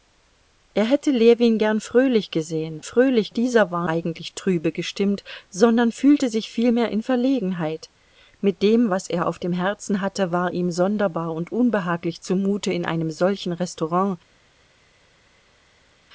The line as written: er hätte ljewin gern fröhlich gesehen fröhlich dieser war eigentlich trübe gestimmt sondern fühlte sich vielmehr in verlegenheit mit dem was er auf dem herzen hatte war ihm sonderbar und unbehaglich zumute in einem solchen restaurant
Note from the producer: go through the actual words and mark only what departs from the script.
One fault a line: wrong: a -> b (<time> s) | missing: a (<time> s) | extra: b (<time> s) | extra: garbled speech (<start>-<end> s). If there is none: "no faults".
no faults